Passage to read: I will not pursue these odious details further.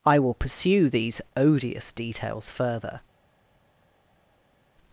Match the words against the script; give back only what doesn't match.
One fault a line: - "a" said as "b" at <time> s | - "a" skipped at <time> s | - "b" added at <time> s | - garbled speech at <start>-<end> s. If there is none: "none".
- "not" skipped at 0.3 s